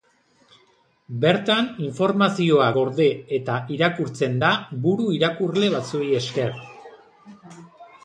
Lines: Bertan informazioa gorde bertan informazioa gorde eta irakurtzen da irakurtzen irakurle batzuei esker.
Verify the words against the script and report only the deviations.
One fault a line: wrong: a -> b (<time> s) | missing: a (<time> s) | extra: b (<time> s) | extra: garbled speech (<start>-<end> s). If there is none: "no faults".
missing: bertan informazioa gorde (3.1 s)
wrong: irakurtzen -> buru (4.9 s)